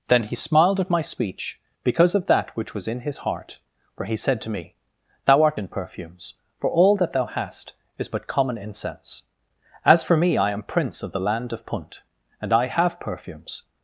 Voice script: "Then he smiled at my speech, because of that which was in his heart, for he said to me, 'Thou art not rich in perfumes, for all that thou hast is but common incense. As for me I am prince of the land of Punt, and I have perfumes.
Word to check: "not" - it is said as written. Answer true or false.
false